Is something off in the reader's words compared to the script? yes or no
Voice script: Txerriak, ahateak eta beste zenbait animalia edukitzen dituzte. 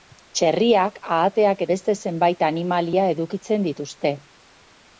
yes